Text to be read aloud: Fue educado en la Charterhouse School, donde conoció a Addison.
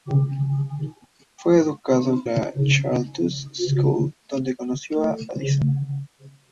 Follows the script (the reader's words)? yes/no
no